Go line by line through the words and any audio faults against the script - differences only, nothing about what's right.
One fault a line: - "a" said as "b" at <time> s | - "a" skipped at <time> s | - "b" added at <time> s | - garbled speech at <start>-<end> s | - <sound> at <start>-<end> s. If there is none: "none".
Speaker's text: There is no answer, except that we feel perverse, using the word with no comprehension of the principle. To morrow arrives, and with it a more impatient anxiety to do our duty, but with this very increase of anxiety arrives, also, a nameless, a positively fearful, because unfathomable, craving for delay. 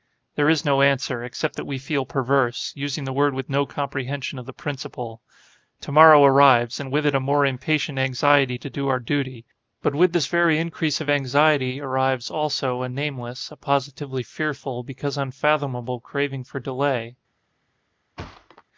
- thud at 18.2-18.6 s